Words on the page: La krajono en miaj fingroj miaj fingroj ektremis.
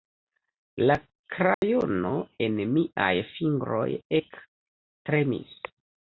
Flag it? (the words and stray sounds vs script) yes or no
yes